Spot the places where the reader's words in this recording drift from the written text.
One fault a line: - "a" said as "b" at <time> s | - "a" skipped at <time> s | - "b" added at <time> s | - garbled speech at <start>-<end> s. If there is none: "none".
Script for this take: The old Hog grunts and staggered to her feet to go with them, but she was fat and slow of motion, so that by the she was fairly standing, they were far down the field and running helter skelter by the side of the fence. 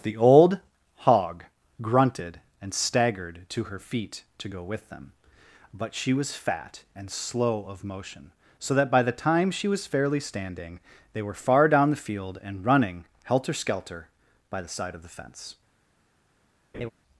- "grunts" said as "grunted" at 1.8 s
- "time" added at 9.1 s